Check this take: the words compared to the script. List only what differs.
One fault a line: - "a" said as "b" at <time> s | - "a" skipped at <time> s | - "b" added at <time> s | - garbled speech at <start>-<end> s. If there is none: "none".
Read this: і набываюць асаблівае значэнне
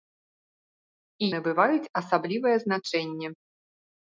none